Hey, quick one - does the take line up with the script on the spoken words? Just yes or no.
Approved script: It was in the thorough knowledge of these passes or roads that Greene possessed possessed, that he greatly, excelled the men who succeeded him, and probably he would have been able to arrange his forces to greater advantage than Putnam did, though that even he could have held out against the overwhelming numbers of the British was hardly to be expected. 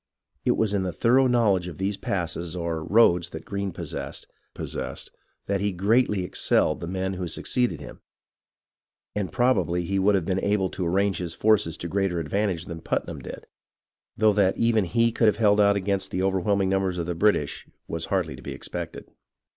yes